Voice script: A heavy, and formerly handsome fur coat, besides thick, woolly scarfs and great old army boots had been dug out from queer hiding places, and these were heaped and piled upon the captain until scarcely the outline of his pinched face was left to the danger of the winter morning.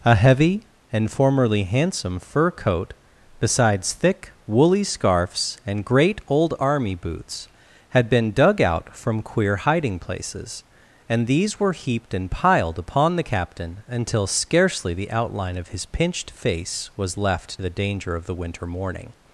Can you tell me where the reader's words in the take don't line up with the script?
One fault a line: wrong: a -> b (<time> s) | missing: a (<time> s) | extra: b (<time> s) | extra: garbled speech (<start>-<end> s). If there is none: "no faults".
missing: to (17.6 s)